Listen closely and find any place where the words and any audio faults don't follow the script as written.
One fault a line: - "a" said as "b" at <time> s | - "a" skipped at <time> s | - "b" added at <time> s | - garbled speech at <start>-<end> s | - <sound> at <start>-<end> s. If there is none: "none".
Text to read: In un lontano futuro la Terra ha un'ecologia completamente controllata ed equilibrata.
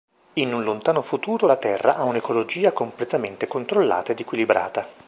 none